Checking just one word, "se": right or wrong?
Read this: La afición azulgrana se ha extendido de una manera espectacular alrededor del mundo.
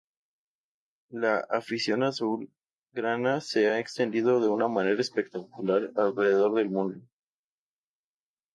right